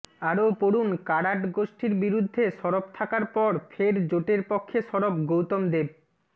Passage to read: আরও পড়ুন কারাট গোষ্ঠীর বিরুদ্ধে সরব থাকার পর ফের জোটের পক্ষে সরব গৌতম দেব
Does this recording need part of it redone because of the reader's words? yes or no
no